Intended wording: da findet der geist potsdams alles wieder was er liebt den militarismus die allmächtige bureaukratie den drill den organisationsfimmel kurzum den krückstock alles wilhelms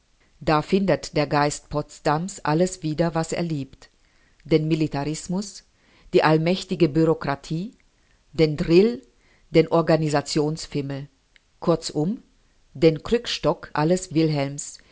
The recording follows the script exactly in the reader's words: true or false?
true